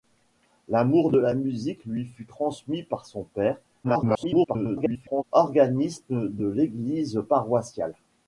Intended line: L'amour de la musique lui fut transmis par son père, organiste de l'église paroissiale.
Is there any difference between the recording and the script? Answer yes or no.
yes